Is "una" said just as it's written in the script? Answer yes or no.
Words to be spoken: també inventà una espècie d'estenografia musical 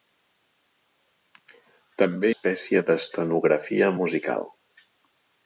no